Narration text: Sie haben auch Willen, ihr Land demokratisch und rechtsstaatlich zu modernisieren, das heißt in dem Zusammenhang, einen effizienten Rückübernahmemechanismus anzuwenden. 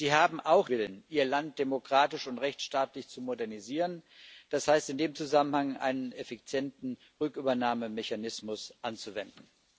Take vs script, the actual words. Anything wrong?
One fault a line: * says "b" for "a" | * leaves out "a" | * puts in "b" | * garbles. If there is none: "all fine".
all fine